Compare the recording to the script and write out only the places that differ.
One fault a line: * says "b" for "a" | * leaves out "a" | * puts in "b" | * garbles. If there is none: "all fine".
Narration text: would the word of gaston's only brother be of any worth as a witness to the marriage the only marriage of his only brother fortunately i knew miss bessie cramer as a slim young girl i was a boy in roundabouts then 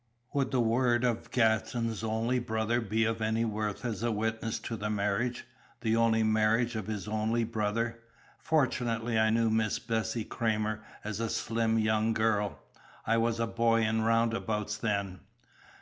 all fine